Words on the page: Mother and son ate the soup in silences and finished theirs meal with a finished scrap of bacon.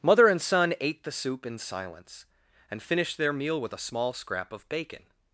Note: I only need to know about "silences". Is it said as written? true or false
false